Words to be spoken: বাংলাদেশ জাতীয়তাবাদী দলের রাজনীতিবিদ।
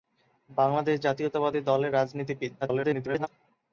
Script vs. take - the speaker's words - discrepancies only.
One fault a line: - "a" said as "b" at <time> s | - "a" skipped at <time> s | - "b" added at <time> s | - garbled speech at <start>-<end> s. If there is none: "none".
- garbled speech at 2.6-3.3 s